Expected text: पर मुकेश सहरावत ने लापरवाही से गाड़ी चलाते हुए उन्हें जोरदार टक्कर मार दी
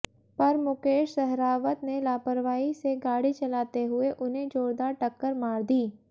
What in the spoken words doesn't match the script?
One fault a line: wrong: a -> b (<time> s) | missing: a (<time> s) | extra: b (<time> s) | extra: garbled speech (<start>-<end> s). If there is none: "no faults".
no faults